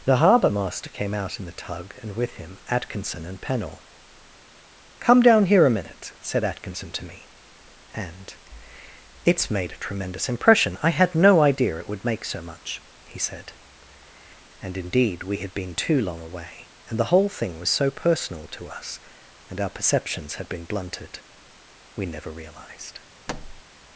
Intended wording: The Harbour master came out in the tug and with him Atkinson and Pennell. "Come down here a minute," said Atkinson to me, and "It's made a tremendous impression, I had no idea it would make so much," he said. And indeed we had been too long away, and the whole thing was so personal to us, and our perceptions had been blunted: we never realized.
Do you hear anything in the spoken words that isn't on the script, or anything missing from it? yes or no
no